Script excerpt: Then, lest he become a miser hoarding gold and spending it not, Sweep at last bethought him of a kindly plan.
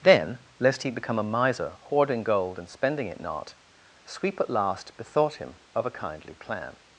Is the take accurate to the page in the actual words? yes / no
yes